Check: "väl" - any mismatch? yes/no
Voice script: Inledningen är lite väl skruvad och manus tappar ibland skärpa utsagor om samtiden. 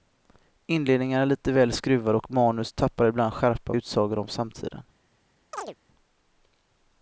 no